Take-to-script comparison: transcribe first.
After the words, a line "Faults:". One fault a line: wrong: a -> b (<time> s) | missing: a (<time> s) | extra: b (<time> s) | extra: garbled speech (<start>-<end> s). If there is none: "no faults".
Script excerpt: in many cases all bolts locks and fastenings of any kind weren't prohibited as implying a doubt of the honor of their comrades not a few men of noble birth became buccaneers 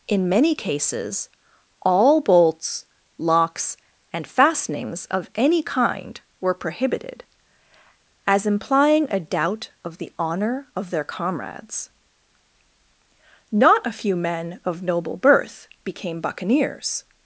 in many cases all bolts locks and fastenings of any kind were prohibited as implying a doubt of the honor of their comrades not a few men of noble birth became buccaneers
Faults:
wrong: weren't -> were (6.4 s)